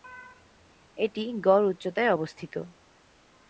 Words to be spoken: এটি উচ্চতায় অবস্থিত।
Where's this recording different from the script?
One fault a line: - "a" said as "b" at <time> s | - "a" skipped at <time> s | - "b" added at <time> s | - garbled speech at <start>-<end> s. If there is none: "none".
- "গড়" added at 1.4 s